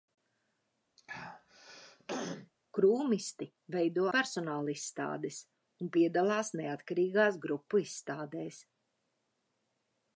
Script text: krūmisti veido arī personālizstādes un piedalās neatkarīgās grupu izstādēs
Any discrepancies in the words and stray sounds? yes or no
yes